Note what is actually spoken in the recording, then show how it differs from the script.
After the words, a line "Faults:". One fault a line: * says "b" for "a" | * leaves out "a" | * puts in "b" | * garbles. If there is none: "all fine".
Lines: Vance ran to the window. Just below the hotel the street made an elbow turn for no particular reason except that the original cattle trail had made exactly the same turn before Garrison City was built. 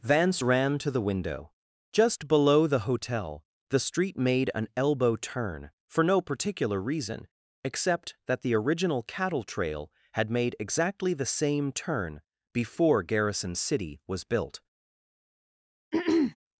Vance ran to the window. Just below the hotel the street made an elbow turn for no particular reason except that the original cattle trail had made exactly the same turn before Garrison City was built.
Faults:
all fine